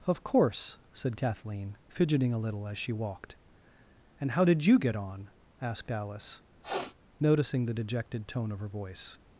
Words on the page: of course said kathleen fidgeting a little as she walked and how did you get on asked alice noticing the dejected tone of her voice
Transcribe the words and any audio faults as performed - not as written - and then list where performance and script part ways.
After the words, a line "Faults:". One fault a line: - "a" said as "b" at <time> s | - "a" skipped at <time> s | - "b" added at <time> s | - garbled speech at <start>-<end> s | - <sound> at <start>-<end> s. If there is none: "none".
of course said kathleen fidgeting a little as she walked and how did you get on asked alice noticing the dejected tone of her voice
Faults:
- sniff at 6.6-7.0 s